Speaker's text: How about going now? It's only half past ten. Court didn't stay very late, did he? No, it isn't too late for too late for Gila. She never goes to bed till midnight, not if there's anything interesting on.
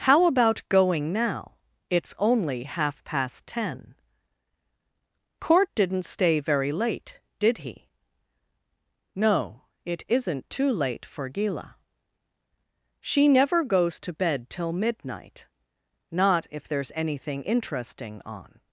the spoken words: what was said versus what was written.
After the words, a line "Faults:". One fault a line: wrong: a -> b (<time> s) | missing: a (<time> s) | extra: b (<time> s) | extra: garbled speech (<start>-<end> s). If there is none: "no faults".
How about going now? It's only half past ten. Court didn't stay very late, did he? No, it isn't too late for Gila. She never goes to bed till midnight, not if there's anything interesting on.
Faults:
missing: too late for (11.3 s)